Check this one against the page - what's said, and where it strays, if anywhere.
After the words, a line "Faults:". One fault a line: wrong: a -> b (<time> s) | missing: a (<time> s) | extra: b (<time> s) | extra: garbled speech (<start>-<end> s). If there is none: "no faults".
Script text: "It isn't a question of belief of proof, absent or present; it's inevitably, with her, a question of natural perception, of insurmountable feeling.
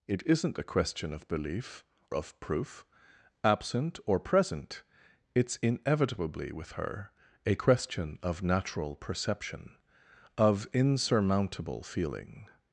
"It isn't a question of belief of proof, absent or present; it's inevitably, with her, a question of natural perception, of insurmountable feeling.
Faults:
no faults